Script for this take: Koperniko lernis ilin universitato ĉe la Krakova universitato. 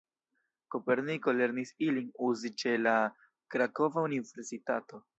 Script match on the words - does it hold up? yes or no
no